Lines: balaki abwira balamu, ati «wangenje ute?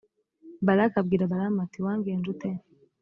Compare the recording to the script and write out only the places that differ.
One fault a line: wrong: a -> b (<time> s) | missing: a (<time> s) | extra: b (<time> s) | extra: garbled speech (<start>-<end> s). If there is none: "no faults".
no faults